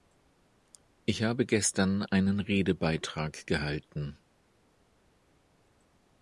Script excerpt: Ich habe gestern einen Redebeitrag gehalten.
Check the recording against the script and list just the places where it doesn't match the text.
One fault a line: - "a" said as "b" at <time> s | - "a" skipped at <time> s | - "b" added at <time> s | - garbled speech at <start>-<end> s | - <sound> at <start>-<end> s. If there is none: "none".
none